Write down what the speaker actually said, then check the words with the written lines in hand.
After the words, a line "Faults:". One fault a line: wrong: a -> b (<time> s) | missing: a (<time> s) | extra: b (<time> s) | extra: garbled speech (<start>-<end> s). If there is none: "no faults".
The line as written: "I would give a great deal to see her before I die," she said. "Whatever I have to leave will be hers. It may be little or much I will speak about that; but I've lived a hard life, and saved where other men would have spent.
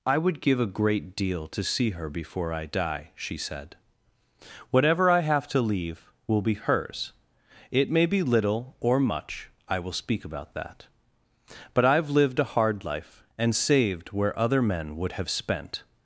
"I would give a great deal to see her before I die," she said. "Whatever I have to leave will be hers. It may be little or much I will speak about that; but I've lived a hard life, and saved where other men would have spent.
Faults:
no faults